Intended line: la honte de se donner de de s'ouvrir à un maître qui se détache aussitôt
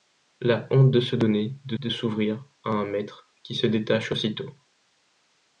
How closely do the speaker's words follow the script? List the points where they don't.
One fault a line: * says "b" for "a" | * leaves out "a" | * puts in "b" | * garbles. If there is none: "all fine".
all fine